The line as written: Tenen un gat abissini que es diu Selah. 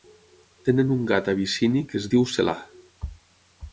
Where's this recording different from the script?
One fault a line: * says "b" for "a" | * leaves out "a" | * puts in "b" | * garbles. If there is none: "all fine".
all fine